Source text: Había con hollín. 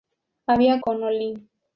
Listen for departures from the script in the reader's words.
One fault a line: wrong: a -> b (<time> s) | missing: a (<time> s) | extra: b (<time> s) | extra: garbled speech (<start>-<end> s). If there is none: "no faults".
no faults